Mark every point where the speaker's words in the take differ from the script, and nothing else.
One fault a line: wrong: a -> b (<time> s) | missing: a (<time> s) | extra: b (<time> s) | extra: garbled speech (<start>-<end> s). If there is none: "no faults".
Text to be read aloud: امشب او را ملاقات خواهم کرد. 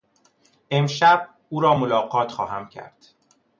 no faults